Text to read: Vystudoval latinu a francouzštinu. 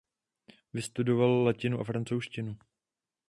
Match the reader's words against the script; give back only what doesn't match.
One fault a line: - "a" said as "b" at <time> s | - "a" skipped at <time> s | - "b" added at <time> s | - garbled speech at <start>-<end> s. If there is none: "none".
none